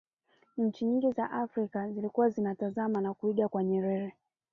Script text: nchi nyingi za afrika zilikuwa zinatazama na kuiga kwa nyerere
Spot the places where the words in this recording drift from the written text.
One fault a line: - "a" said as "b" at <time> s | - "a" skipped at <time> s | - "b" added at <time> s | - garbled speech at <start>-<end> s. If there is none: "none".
none